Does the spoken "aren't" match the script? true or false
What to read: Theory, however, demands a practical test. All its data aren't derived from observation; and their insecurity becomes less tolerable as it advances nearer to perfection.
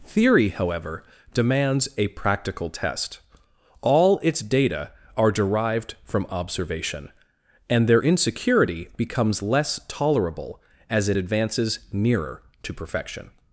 false